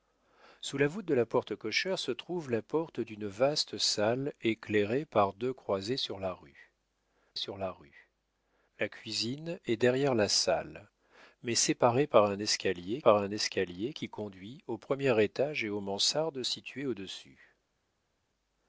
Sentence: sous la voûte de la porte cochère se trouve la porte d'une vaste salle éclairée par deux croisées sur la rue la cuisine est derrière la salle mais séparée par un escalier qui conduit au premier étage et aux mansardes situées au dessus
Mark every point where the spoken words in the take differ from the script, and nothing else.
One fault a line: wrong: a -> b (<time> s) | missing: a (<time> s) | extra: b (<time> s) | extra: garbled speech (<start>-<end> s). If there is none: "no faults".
extra: sur (7.3 s)
extra: rue la (7.7 s)
extra: par un escalier (13.0 s)